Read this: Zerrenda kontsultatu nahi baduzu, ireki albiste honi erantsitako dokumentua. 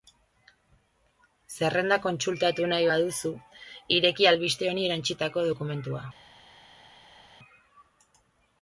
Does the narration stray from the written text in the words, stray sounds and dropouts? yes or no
no